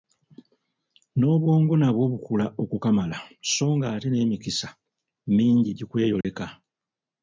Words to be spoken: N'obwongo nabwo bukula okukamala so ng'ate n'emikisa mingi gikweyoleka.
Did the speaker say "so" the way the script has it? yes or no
yes